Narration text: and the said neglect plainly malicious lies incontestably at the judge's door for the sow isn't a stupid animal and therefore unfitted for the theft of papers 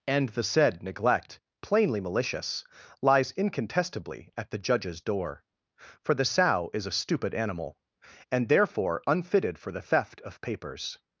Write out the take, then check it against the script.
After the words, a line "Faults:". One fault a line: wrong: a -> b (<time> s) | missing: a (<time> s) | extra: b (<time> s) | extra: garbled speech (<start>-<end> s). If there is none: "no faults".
and the said neglect plainly malicious lies incontestably at the judge's door for the sow is a stupid animal and therefore unfitted for the theft of papers
Faults:
wrong: isn't -> is (6.7 s)